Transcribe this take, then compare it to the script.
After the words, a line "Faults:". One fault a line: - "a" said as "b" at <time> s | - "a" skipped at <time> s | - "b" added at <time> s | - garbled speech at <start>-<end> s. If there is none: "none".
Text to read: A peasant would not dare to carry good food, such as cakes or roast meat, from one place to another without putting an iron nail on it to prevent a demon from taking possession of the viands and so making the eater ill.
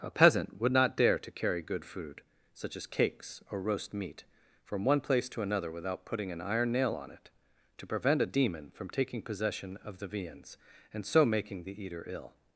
A peasant would not dare to carry good food, such as cakes or roast meat, from one place to another without putting an iron nail on it to prevent a demon from taking possession of the viands and so making the eater ill.
Faults:
none